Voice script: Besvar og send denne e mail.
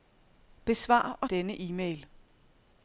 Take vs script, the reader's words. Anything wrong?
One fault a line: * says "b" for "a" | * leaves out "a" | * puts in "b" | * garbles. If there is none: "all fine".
* leaves out "send"